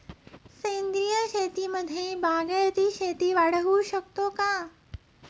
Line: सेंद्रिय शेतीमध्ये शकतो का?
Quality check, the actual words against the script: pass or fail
fail